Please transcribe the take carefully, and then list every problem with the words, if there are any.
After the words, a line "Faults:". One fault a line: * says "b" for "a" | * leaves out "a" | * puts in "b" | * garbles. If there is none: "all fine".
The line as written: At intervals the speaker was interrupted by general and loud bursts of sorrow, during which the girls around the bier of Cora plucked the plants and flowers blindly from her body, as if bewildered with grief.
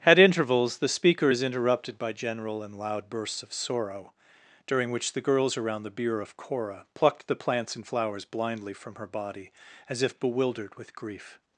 At intervals the speaker is interrupted by general and loud bursts of sorrow, during which the girls around the bier of Cora plucked the plants and flowers blindly from her body, as if bewildered with grief.
Faults:
* says "is" for "was"